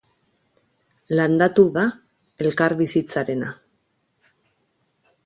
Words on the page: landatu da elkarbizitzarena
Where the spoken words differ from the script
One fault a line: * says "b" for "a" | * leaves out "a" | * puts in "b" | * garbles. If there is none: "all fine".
all fine